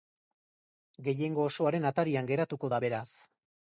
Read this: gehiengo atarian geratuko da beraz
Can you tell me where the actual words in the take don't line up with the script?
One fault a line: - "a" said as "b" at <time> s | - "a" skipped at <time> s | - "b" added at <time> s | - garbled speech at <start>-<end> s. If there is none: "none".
- "osoaren" added at 1.5 s